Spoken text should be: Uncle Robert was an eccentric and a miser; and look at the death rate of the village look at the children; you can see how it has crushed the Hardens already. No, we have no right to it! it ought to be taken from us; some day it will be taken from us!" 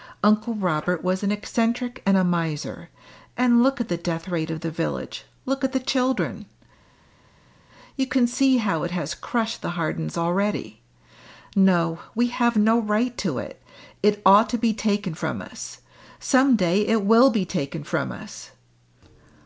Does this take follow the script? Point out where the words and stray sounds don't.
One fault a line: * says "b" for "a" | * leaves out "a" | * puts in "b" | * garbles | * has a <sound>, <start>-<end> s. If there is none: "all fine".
all fine